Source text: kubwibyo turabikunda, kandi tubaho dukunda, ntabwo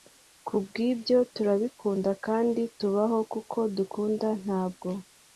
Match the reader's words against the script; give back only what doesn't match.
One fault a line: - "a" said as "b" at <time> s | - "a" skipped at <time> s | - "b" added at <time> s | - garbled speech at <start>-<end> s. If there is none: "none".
- "kuko" added at 3.3 s